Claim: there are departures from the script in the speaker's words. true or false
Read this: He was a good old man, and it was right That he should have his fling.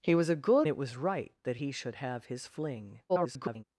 true